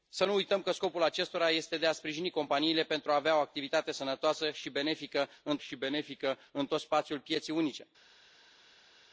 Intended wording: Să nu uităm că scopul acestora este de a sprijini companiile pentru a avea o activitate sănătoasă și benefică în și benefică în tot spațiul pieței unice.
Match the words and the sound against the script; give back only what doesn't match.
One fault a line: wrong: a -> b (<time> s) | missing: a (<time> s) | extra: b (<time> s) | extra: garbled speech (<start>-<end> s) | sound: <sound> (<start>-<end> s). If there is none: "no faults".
no faults